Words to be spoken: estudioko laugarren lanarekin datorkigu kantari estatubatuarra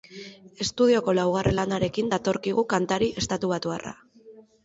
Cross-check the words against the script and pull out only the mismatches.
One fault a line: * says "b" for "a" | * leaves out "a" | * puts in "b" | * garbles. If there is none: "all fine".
all fine